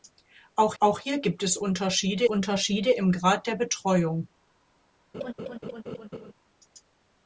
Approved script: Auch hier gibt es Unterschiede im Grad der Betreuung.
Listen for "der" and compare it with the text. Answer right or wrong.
right